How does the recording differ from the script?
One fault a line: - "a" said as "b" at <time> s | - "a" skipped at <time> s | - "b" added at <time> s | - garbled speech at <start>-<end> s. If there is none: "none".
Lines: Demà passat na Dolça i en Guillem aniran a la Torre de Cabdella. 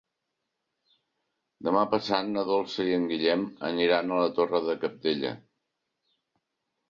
none